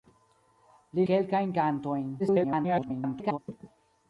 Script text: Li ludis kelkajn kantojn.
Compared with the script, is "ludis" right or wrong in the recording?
wrong